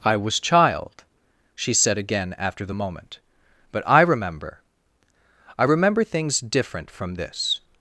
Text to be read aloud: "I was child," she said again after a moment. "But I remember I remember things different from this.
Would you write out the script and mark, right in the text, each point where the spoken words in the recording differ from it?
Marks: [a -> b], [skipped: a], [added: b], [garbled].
"I was child," she said again after [a -> the] moment. "But I remember I remember things different from this.